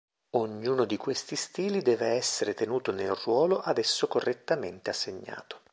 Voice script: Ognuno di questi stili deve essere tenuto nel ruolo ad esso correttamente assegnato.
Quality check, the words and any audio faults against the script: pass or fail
pass